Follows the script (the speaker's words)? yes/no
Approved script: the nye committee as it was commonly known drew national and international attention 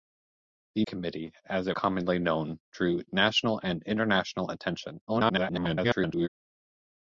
no